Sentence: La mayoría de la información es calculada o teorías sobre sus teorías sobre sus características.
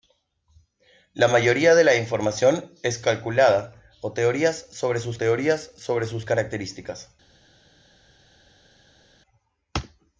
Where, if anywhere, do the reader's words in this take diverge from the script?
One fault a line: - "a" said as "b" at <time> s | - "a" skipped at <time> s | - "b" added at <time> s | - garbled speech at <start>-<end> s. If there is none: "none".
none